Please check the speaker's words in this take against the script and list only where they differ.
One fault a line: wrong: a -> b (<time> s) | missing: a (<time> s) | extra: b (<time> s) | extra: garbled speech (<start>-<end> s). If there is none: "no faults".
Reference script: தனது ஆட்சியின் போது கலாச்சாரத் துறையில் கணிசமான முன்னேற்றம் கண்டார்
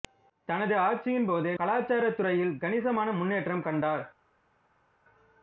no faults